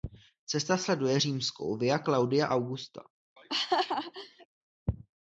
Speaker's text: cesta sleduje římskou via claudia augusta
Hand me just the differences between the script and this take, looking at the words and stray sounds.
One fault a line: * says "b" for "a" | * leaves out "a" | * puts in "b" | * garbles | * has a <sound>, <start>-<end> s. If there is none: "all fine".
* has a laugh, 3.4-4.5 s